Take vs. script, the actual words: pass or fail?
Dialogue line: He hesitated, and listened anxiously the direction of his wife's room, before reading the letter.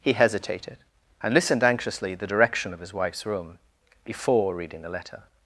pass